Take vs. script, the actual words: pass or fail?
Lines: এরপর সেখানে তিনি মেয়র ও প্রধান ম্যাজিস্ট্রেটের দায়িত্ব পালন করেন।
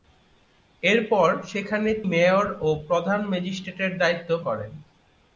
fail